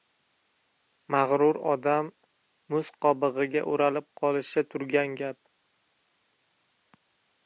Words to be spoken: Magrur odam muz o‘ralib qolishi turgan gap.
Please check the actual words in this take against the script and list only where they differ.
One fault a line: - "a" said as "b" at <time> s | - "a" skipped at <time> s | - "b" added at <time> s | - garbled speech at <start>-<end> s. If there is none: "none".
- "qobig‘iga" added at 3.1 s